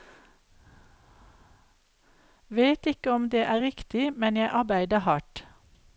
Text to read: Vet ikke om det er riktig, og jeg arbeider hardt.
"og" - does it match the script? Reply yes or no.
no